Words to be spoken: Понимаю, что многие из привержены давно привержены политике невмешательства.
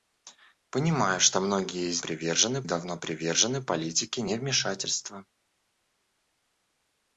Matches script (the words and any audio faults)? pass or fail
pass